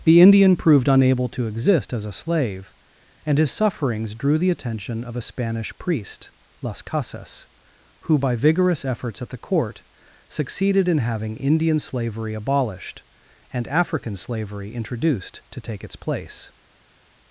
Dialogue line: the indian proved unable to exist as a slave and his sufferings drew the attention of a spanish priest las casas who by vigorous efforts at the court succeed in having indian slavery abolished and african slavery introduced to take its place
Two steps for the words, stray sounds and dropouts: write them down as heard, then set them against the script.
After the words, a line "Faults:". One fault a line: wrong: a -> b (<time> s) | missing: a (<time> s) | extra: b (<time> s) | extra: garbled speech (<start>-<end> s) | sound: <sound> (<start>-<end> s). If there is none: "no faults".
the indian proved unable to exist as a slave and his sufferings drew the attention of a spanish priest las casas who by vigorous efforts at the court succeeded in having indian slavery abolished and african slavery introduced to take its place
Faults:
wrong: succeed -> succeeded (10.3 s)